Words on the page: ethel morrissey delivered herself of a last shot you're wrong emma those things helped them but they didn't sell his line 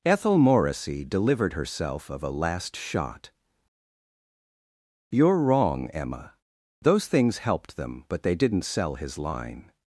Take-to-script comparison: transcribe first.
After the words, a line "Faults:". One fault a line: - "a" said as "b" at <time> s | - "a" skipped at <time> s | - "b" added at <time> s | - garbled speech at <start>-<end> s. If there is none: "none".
ethel morrissey delivered herself of a last shot you're wrong emma those things helped them but they didn't sell his line
Faults:
none